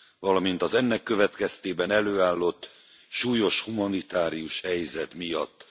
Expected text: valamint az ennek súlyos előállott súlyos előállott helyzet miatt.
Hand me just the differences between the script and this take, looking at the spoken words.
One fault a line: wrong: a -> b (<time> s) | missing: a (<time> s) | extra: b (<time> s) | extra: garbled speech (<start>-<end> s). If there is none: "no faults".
wrong: súlyos -> következtében (1.0 s)
wrong: előállott -> humanitárius (3.6 s)